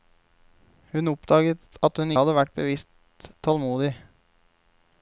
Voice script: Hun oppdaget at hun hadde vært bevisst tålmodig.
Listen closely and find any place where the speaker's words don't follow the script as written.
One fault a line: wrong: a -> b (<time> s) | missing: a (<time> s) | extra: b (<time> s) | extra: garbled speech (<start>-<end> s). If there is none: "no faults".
no faults